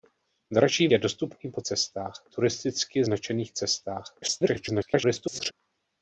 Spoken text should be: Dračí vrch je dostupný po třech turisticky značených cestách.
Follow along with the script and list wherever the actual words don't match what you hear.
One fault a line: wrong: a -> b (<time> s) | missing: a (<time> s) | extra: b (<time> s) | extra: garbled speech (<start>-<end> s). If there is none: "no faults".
missing: vrch (0.9 s)
wrong: třech -> cestách (1.6 s)
extra: garbled speech (4.2-5.5 s)